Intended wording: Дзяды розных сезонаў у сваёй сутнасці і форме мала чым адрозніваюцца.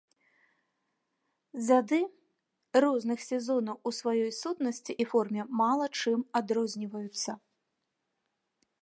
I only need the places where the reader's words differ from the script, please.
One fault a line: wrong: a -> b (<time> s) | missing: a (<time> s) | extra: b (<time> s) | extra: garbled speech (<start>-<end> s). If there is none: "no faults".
no faults